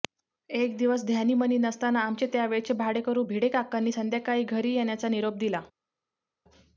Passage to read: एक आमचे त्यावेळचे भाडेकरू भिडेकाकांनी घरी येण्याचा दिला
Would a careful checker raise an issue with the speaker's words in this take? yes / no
yes